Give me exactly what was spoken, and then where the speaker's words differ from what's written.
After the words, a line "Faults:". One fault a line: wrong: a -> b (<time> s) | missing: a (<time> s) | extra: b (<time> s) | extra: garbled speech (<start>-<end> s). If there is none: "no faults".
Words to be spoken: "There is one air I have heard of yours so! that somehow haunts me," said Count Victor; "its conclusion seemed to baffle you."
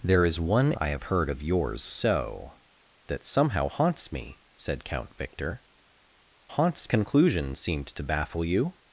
"There is one I have heard of yours so! that somehow haunts me," said Count Victor; "haunts conclusion seemed to baffle you."
Faults:
missing: air (0.7 s)
wrong: its -> haunts (6.5 s)